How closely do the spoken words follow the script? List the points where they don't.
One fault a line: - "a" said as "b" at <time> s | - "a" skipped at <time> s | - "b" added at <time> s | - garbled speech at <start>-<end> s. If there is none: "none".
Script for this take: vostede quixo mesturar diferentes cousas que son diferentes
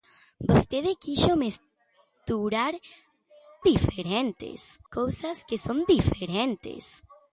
none